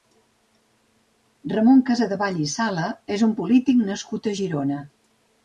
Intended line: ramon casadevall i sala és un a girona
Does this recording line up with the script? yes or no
no